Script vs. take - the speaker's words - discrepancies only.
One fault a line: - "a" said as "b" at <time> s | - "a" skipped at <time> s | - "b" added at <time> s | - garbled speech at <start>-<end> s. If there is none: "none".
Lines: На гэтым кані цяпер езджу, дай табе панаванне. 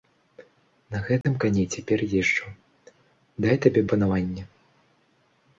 none